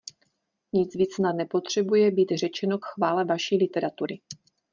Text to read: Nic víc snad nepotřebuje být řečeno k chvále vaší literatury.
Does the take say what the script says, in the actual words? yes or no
yes